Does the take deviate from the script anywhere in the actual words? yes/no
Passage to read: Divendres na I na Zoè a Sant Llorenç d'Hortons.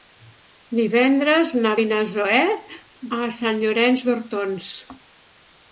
no